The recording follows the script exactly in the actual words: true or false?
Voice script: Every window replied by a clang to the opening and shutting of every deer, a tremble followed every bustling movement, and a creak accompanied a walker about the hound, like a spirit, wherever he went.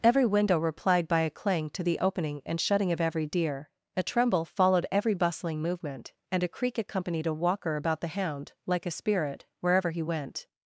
true